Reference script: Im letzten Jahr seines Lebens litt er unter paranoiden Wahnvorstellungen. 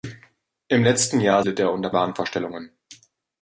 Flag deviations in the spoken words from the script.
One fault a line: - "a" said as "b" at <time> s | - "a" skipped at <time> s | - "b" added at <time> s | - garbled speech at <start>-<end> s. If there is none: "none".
- "seines Lebens" skipped at 1.4 s
- "paranoiden" skipped at 1.9 s